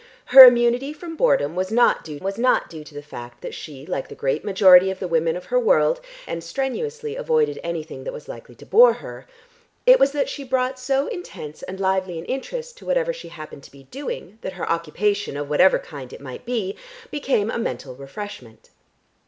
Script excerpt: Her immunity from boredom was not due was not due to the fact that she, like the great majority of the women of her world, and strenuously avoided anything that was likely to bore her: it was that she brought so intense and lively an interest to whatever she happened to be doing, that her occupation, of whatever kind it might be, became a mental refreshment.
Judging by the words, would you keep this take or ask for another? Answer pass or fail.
pass